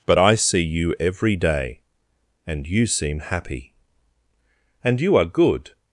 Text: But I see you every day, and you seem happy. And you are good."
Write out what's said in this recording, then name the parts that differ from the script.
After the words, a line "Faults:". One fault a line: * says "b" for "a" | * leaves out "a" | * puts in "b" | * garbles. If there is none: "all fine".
But I see you every day, and you seem happy. And you are good."
Faults:
all fine